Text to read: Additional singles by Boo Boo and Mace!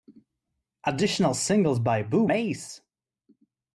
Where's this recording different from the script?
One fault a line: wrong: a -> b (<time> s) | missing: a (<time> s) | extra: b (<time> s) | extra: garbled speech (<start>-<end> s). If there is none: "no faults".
missing: Boo and (2.3 s)